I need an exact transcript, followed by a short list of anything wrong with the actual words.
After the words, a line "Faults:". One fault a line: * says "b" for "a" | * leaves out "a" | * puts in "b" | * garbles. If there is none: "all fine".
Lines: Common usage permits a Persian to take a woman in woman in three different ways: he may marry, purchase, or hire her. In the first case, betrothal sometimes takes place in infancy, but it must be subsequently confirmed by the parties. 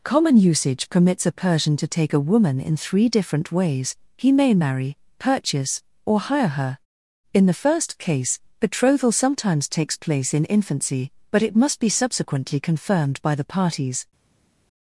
Common usage permits a Persian to take a woman in three different ways: he may marry, purchase, or hire her. In the first case, betrothal sometimes takes place in infancy, but it must be subsequently confirmed by the parties.
Faults:
* leaves out "woman in"